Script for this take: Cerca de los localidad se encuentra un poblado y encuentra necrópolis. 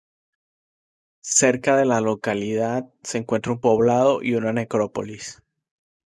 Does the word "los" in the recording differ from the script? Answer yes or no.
yes